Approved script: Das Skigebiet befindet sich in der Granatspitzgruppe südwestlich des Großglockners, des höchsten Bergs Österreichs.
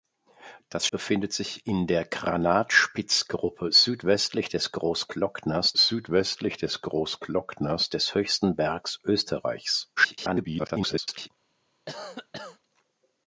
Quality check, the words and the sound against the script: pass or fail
fail